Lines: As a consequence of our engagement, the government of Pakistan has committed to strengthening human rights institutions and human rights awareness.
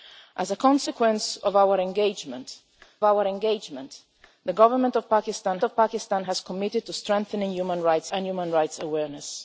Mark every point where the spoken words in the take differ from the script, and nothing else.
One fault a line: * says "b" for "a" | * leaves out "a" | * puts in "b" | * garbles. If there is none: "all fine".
* puts in "our engagement"
* puts in "of Pakistan"
* leaves out "institutions"